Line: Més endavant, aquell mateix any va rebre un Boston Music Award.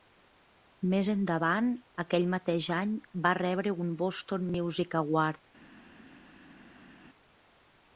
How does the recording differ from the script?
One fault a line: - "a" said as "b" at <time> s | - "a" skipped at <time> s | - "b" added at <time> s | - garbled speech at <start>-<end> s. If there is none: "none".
none